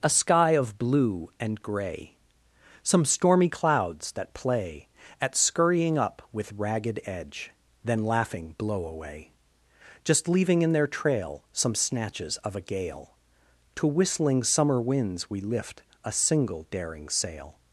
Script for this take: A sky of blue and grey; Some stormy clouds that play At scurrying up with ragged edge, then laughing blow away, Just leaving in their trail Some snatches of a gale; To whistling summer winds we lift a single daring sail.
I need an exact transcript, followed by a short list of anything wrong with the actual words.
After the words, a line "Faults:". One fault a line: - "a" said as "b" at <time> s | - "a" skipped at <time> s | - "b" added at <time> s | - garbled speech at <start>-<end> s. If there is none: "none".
A sky of blue and grey; Some stormy clouds that play At scurrying up with ragged edge, then laughing blow away, Just leaving in their trail Some snatches of a gale; To whistling summer winds we lift a single daring sail.
Faults:
none